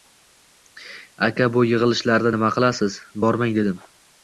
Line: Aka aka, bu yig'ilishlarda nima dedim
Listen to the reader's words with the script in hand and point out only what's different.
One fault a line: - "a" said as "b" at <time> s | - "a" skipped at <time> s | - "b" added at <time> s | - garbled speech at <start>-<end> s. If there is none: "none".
- "aka" skipped at 1.5 s
- "qilasiz Bormang" added at 2.6 s